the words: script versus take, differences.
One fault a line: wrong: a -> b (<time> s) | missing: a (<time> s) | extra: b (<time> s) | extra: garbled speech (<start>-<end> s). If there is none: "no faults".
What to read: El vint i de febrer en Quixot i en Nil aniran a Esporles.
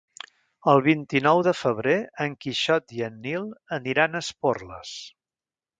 extra: nou (1.2 s)